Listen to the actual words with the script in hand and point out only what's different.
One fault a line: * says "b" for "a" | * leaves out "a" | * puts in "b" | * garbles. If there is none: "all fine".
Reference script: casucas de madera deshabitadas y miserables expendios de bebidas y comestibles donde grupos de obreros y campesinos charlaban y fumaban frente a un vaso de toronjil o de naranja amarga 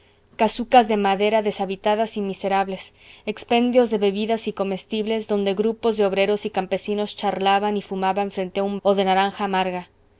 * leaves out "vaso de toronjil"